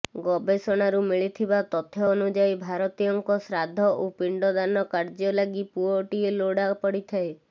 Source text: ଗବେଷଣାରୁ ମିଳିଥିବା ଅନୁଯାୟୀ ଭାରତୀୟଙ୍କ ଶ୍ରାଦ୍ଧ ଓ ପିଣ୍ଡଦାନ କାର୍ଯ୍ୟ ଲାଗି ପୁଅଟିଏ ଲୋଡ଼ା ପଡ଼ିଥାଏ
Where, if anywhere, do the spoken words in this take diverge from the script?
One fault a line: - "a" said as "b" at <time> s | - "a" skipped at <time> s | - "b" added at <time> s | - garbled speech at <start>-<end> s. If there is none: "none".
- "ତଥ୍ୟ" added at 1.7 s